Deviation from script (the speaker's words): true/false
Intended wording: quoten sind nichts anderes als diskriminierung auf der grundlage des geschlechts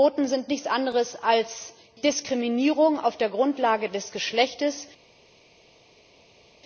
false